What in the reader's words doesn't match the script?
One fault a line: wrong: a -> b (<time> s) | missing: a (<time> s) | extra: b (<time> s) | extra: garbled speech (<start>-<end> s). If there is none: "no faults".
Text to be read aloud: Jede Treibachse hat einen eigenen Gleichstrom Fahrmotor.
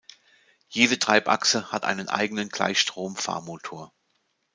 no faults